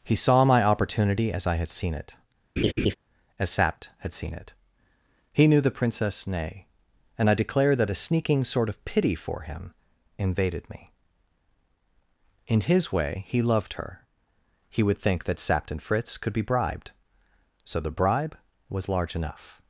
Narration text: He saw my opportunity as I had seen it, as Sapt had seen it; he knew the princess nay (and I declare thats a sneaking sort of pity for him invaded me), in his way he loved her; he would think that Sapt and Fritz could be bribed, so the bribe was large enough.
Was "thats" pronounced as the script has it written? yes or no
no